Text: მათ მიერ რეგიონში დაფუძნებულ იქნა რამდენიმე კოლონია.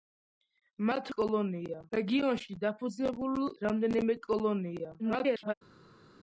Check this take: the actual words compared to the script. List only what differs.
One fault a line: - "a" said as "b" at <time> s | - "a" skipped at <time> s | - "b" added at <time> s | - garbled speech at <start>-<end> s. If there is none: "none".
- "მიერ" said as "კოლონია" at 1.2 s
- "იქნა" skipped at 3.4 s
- garbled speech at 5.0-5.5 s